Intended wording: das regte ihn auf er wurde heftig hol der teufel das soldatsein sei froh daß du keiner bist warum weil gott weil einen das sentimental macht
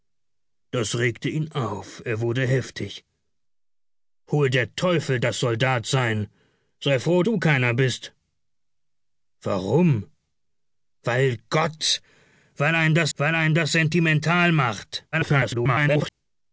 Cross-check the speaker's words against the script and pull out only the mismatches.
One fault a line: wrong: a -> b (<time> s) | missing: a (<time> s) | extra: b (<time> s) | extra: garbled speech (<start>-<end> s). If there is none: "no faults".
missing: daß (7.2 s)
extra: weil einen das (13.2 s)
extra: garbled speech (15.1-16.1 s)